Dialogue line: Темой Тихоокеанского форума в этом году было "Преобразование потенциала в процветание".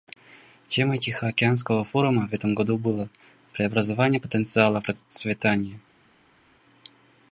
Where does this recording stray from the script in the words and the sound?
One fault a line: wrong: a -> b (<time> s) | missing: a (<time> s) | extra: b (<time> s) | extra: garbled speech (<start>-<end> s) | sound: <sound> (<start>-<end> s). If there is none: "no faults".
no faults